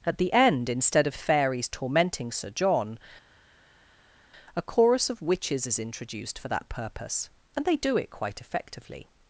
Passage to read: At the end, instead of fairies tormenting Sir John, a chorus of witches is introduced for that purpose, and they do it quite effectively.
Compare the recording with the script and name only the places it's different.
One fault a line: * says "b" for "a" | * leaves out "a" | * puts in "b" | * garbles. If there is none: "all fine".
all fine